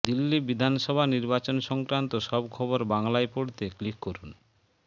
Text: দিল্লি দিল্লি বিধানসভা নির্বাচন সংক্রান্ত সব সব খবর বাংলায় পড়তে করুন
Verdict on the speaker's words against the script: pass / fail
fail